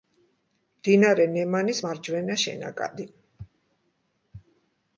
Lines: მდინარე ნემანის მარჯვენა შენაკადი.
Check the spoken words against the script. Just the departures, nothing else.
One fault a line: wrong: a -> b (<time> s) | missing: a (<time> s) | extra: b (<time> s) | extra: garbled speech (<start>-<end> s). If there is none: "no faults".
no faults